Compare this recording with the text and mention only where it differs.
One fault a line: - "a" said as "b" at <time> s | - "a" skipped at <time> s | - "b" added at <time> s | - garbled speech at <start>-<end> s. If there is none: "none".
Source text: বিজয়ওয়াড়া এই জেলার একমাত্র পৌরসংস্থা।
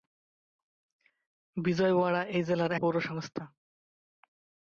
- "একমাত্র" skipped at 2.7 s